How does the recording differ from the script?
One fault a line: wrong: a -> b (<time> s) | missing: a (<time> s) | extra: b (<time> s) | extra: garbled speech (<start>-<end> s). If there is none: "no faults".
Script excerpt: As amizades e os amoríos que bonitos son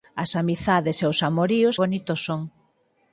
missing: que (1.8 s)